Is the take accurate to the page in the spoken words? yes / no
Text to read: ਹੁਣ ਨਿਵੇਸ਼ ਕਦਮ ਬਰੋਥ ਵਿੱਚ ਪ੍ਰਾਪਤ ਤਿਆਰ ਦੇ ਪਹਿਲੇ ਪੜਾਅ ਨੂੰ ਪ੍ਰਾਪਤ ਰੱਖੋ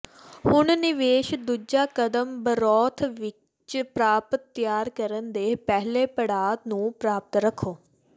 no